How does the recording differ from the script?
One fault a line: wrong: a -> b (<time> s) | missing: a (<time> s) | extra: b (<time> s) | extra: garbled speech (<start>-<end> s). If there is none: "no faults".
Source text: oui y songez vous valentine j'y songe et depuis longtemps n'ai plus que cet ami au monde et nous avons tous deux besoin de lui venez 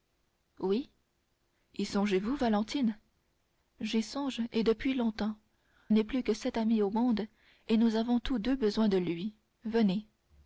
no faults